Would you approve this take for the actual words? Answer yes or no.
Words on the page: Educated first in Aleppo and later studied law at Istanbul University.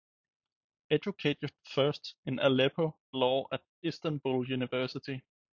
no